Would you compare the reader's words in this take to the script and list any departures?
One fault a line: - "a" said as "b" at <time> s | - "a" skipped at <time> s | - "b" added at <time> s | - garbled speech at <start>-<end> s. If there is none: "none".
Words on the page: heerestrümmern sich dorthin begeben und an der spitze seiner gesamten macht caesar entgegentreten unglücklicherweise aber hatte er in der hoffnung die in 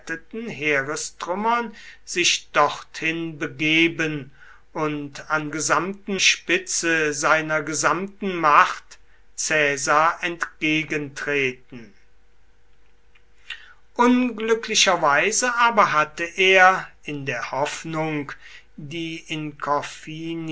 - "der" said as "gesamten" at 5.5 s